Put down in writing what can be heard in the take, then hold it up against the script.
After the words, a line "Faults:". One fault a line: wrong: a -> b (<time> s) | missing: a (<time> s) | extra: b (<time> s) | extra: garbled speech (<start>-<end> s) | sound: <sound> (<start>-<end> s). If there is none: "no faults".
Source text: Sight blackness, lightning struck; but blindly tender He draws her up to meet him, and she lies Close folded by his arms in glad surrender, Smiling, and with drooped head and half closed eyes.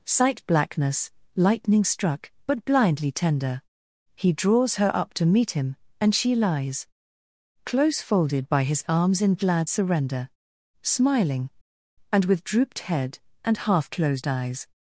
Sight blackness, lightning struck; but blindly tender He draws her up to meet him, and she lies Close folded by his arms in glad surrender, Smiling, and with drooped head and half closed eyes.
Faults:
no faults